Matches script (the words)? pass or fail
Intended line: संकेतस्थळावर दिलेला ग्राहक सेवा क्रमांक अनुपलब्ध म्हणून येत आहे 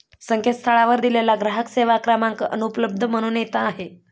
pass